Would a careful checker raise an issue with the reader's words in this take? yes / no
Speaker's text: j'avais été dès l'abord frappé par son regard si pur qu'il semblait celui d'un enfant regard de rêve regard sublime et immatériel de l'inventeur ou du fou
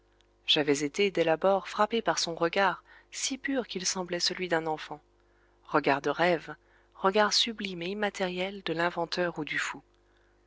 no